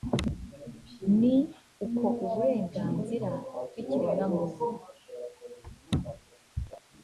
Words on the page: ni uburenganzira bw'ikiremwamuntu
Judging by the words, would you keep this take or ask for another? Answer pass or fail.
fail